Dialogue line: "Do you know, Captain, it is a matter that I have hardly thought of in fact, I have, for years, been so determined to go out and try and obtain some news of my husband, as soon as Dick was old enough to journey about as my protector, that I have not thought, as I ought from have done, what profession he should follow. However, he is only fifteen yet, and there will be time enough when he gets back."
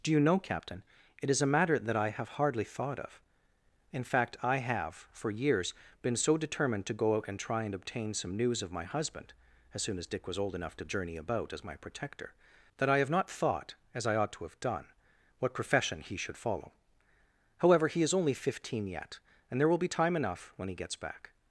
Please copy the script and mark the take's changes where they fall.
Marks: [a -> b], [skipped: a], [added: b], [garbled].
"Do you know, Captain, it is a matter that I have hardly thought of in fact, I have, for years, been so determined to go out and try and obtain some news of my husband, as soon as Dick was old enough to journey about as my protector, that I have not thought, as I ought [from -> to] have done, what profession he should follow. However, he is only fifteen yet, and there will be time enough when he gets back."